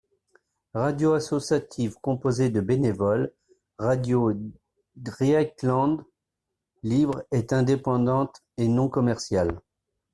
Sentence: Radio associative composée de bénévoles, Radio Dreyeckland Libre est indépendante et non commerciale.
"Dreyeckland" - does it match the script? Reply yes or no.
yes